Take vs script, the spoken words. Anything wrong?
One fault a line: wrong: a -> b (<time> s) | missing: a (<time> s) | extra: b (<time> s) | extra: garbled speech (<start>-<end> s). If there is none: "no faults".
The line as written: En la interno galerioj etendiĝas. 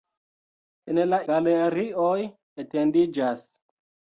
missing: interno (1.2 s)